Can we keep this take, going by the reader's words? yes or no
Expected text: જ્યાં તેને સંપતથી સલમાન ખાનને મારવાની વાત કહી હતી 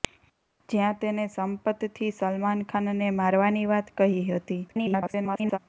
no